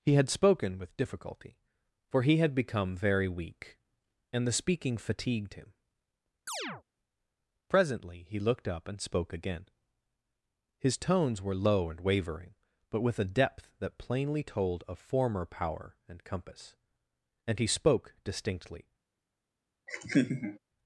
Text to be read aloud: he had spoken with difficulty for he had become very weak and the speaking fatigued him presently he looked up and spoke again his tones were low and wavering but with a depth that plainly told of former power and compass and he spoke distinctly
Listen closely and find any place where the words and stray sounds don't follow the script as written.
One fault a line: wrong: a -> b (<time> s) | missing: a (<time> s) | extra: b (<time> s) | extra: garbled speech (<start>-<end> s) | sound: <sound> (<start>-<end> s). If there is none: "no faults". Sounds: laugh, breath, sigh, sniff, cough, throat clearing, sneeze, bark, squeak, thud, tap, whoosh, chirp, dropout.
sound: chirp (6.5-6.8 s)
sound: laugh (19.9-20.6 s)